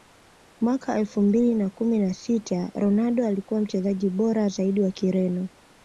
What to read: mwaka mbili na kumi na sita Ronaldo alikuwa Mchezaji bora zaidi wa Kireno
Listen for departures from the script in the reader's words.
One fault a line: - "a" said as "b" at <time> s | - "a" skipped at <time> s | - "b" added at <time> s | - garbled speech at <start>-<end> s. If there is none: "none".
- "elfu" added at 1.0 s